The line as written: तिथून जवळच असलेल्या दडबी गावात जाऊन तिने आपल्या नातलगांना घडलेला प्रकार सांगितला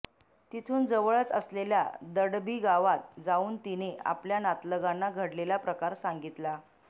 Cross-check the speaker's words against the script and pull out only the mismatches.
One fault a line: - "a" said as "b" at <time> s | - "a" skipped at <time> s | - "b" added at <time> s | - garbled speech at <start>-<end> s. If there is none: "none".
none